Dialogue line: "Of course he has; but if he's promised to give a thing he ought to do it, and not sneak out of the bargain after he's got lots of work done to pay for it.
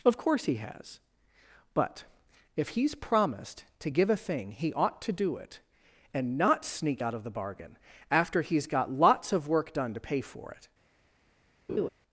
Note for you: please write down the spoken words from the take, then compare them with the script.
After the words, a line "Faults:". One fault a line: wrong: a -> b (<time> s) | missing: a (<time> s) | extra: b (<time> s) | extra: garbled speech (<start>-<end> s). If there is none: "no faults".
"Of course he has; but if he's promised to give a thing he ought to do it, and not sneak out of the bargain after he's got lots of work done to pay for it.
Faults:
no faults